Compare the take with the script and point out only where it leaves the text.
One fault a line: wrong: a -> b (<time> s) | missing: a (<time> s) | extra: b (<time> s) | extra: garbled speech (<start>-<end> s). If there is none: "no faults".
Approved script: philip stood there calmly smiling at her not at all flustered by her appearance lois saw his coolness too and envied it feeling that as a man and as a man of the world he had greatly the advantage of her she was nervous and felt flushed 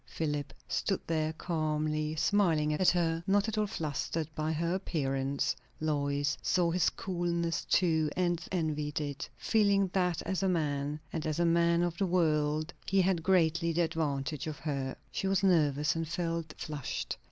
no faults